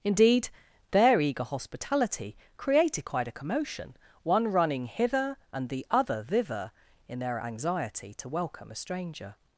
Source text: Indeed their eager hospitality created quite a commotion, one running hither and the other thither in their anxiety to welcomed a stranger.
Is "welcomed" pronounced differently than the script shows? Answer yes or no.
yes